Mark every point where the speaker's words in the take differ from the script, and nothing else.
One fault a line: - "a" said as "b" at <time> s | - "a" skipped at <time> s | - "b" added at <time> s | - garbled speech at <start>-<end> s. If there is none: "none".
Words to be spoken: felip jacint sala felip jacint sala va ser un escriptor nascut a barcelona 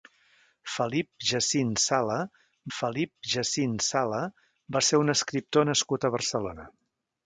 none